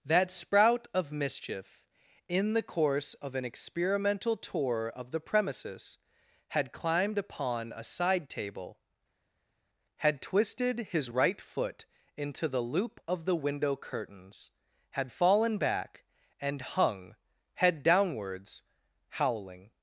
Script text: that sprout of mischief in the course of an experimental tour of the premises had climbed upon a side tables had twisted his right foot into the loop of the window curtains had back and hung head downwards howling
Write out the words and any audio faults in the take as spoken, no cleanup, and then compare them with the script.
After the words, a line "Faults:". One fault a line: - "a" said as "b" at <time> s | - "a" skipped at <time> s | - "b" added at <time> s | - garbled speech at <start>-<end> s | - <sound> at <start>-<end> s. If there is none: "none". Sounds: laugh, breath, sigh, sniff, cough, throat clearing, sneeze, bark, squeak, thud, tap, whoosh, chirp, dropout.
that sprout of mischief in the course of an experimental tour of the premises had climbed upon a side table had twisted his right foot into the loop of the window curtains had fallen back and hung head downwards howling
Faults:
- "tables" said as "table" at 8.3 s
- "fallen" added at 15.1 s